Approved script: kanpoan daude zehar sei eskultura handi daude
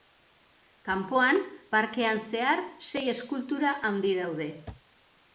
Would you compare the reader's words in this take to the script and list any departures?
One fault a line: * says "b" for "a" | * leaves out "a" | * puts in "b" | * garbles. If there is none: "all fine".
* says "parkean" for "daude"